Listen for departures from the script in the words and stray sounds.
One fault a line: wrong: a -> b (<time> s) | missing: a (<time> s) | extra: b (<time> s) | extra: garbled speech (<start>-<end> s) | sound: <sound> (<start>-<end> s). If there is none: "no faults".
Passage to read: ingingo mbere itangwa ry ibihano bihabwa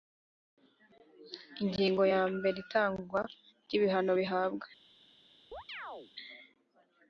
extra: ya (2.1 s)
sound: chirp (5.5-6.1 s)